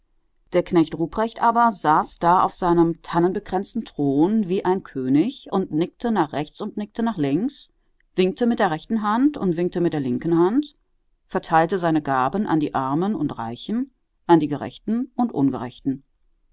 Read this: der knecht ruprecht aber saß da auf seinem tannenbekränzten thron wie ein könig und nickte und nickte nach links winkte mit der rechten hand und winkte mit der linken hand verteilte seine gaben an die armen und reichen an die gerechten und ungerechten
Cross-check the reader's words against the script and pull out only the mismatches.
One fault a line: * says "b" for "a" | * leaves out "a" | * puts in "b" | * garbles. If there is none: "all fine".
* puts in "nach rechts"